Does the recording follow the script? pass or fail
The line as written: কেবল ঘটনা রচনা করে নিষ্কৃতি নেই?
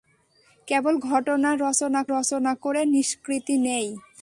fail